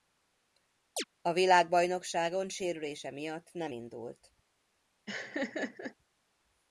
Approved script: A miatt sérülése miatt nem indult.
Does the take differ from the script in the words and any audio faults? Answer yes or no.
yes